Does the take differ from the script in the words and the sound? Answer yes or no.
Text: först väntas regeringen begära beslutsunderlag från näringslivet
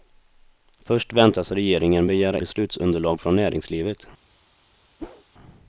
yes